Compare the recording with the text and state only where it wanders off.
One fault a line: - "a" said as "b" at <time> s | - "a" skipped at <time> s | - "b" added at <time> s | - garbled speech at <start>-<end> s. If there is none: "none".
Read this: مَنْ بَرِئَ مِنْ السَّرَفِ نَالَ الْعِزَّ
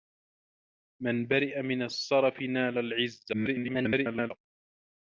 - garbled speech at 3.3-4.3 s